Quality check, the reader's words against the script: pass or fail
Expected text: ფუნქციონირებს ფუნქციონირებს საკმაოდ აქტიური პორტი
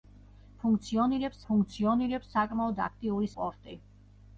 pass